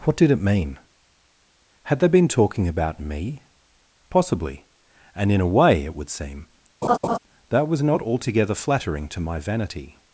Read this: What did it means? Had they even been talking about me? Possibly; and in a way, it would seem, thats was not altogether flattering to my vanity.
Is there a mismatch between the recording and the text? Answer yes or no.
yes